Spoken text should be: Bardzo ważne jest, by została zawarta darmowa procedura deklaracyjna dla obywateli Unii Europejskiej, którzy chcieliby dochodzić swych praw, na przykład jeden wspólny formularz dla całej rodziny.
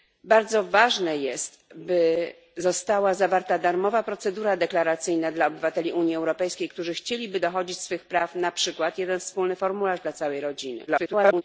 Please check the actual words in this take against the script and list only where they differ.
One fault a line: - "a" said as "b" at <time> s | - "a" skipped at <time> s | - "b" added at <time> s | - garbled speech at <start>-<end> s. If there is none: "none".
- garbled speech at 10.9-11.4 s